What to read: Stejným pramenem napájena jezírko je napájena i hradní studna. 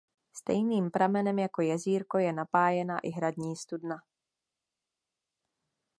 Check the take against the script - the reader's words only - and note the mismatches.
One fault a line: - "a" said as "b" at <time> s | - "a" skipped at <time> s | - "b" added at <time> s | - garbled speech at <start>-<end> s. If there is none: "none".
- "napájena" said as "jako" at 1.4 s